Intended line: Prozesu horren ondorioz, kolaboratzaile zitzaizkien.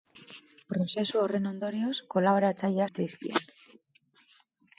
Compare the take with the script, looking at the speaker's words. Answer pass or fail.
pass